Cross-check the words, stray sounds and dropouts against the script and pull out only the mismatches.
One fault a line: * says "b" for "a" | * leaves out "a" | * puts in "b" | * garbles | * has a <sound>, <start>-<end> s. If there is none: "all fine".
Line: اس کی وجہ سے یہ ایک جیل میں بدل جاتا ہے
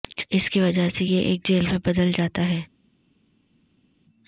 all fine